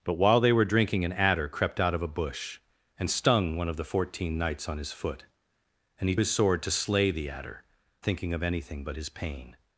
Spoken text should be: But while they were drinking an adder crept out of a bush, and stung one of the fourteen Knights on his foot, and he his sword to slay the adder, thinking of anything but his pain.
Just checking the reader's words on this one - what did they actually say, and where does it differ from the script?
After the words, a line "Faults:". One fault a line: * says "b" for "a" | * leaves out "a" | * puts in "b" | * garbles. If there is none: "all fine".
But while they were drinking an adder crept out of a bush, and stung one of the fourteen Knights on his foot, and he his sword to slay the adder, thinking of anything but his pain.
Faults:
all fine